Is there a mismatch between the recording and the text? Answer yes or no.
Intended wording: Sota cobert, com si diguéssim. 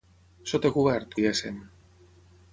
yes